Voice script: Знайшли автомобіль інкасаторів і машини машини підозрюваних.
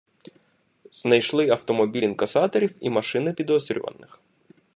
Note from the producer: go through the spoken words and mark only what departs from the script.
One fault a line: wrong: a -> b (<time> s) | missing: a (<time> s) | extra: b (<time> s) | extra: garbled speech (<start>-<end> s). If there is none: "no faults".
missing: машини (3.3 s)